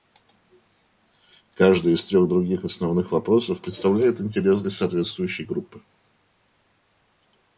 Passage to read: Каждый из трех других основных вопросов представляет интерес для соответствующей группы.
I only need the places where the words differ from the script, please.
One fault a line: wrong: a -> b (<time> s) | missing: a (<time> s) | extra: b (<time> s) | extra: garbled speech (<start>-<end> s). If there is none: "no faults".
no faults